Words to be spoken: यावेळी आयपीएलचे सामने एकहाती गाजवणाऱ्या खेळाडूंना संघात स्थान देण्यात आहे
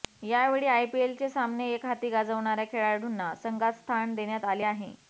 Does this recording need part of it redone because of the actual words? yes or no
yes